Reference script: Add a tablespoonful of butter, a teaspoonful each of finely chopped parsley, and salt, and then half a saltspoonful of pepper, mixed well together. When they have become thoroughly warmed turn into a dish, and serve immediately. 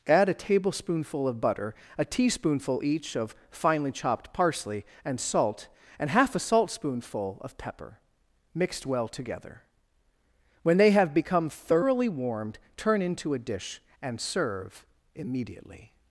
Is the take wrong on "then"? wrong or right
wrong